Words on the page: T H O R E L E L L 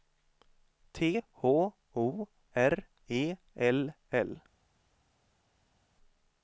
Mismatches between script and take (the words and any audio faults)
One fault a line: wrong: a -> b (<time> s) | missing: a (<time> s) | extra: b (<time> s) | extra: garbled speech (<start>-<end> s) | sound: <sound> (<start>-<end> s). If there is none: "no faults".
missing: E L (3.9 s)